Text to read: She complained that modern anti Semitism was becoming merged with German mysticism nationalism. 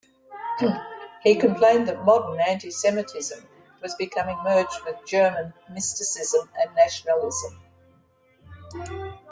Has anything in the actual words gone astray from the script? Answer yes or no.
yes